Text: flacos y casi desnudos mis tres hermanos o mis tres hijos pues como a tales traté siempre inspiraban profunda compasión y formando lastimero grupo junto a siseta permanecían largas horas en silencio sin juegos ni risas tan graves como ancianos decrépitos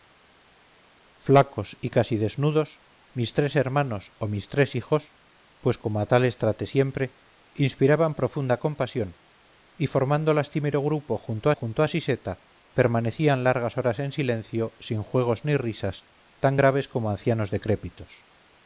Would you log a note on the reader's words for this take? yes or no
yes